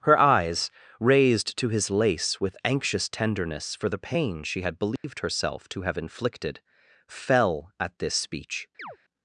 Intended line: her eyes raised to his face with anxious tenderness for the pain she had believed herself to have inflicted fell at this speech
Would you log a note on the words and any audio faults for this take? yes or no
yes